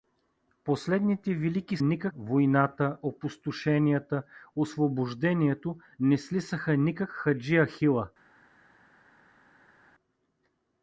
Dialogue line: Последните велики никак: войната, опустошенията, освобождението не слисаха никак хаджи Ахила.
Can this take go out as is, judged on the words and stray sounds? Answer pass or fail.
pass